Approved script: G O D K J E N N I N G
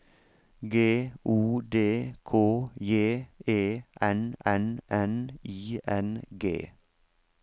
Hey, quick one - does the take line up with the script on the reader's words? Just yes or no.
no